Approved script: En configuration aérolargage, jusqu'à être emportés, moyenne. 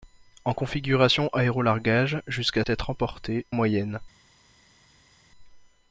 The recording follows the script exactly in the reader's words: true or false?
true